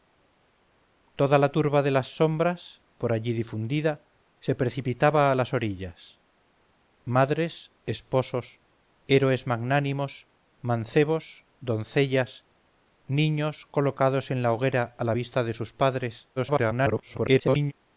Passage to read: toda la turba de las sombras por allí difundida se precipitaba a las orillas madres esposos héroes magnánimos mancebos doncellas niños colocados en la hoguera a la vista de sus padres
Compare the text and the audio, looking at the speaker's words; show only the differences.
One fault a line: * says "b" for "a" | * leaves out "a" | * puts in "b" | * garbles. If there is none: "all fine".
* garbles